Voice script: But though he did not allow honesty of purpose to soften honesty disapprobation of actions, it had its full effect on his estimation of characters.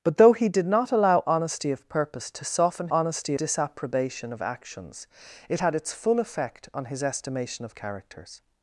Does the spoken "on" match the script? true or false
true